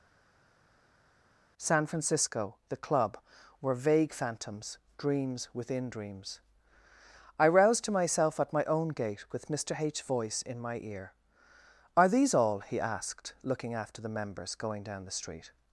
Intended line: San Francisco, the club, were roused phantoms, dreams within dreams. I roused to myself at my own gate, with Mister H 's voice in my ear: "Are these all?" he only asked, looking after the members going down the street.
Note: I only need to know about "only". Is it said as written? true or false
false